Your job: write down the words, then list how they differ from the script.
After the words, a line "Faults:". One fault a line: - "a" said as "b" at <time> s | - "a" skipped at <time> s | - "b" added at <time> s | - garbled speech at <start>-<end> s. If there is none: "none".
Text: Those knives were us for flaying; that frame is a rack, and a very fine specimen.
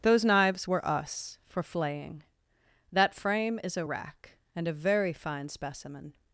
Those knives were us for flaying; that frame is a rack, and a very fine specimen.
Faults:
none